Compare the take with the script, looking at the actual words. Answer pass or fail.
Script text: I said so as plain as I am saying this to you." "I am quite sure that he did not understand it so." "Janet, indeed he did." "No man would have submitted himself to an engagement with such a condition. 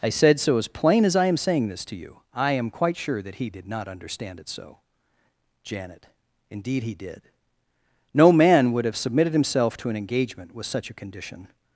pass